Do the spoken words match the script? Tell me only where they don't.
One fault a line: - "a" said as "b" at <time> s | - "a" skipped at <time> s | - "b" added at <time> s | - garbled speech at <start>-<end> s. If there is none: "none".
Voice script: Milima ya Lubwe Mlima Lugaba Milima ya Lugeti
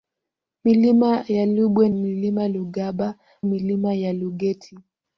none